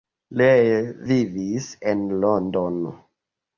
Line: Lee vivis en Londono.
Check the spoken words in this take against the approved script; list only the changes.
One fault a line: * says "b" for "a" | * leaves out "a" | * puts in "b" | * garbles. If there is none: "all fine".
all fine